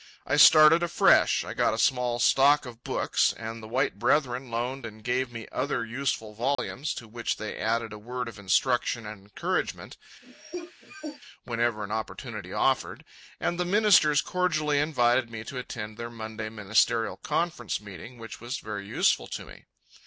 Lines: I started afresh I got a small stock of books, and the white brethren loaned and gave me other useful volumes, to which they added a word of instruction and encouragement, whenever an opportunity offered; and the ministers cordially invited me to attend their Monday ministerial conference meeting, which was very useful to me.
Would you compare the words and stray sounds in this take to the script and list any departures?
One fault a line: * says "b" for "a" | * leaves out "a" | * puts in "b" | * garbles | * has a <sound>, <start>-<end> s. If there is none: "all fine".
* has a dropout, 6.5-6.6 s
* has a cough, 10.2-11.2 s